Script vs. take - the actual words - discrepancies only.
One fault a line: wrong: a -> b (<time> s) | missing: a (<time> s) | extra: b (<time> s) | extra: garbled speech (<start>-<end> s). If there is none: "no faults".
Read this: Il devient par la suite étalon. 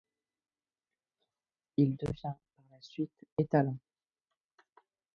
no faults